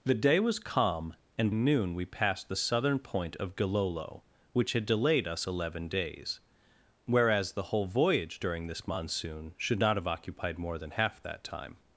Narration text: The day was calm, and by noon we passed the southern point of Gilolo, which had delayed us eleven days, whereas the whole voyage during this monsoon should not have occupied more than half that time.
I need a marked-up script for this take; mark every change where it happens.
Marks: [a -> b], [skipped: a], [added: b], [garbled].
The day was calm, and [skipped: by] noon we passed the southern point of Gilolo, which had delayed us eleven days, whereas the whole voyage during this monsoon should not have occupied more than half that time.